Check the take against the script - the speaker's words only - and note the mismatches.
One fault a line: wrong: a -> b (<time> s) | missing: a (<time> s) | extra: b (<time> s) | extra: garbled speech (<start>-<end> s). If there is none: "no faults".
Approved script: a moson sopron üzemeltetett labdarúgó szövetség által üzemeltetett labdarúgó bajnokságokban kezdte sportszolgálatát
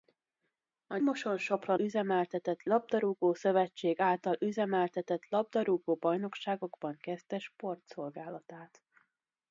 no faults